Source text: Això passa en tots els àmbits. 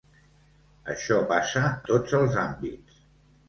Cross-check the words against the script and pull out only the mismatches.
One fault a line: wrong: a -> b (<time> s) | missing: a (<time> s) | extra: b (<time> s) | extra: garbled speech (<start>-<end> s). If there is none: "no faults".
missing: en (1.6 s)